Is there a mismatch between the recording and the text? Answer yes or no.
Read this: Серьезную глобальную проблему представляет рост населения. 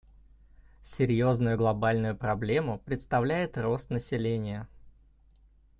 no